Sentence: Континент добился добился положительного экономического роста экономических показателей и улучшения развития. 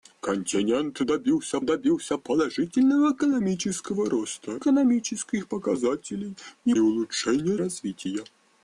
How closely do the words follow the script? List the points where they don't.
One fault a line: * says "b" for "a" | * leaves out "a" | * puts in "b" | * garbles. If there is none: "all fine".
all fine